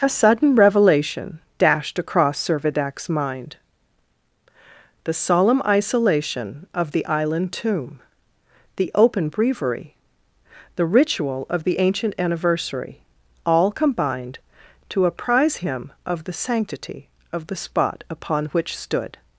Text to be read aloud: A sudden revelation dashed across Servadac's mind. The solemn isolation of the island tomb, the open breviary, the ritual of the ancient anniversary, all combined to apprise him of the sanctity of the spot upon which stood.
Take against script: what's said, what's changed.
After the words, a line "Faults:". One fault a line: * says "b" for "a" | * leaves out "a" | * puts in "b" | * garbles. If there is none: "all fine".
A sudden revelation dashed across Servadac's mind. The solemn isolation of the island tomb, the open breviary, the ritual of the ancient anniversary, all combined to apprise him of the sanctity of the spot upon which stood.
Faults:
all fine